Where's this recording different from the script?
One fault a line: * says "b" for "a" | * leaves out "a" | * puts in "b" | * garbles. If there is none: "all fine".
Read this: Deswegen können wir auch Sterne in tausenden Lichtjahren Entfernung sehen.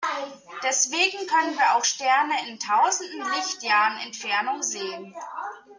all fine